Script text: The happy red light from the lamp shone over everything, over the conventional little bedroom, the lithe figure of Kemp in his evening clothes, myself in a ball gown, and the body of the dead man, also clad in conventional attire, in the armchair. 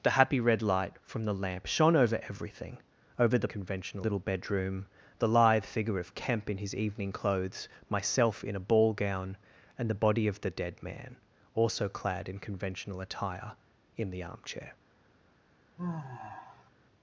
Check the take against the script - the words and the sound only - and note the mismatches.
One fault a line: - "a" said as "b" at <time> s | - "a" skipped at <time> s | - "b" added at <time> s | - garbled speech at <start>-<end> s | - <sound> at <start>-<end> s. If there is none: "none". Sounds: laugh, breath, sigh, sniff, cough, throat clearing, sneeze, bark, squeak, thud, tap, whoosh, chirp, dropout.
- sigh at 15.8-16.7 s